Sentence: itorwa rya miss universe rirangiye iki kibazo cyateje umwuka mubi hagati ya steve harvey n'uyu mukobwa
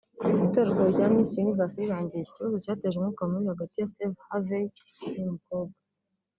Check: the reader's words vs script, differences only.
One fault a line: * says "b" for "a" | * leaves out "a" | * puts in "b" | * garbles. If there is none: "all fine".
all fine